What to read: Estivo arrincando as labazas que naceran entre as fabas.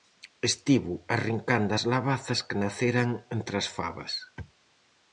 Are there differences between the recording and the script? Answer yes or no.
no